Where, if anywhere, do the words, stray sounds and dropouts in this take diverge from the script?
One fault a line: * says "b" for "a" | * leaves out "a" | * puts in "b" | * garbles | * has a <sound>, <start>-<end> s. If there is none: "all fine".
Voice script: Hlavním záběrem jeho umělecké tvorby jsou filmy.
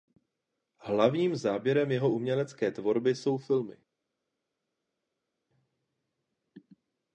all fine